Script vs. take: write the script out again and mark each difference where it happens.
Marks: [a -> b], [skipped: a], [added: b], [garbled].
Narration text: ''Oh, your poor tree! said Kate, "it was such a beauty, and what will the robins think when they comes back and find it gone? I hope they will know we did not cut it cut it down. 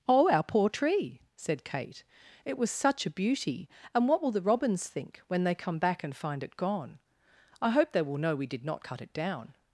''Oh, [your -> our] poor tree! said Kate, "it was such a beauty, and what will the robins think when they [comes -> come] back and find it gone? I hope they will know we did not cut it [skipped: cut it] down.